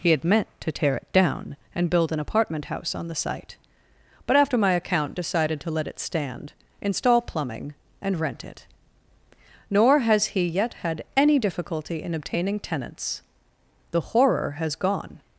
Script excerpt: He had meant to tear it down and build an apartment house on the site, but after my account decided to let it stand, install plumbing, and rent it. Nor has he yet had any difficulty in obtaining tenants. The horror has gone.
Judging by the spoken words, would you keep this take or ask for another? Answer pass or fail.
pass